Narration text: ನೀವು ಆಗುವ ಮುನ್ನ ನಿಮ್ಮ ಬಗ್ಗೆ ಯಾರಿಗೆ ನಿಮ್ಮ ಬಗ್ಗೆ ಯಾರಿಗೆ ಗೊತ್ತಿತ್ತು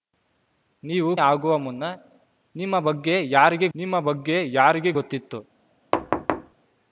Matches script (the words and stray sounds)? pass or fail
fail